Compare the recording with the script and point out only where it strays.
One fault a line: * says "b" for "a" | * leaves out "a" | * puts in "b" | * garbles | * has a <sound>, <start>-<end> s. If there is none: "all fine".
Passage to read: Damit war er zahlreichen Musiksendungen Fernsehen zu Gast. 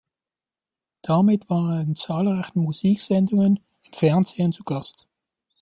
* puts in "in"
* puts in "im"